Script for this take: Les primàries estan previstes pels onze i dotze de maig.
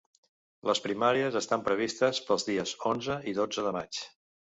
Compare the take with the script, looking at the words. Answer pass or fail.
fail